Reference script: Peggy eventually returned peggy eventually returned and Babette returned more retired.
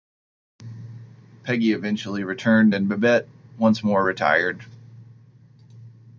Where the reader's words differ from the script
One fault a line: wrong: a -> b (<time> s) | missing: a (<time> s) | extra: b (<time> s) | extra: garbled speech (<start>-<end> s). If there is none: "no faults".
missing: peggy eventually returned (2.8 s)
wrong: returned -> once (3.6 s)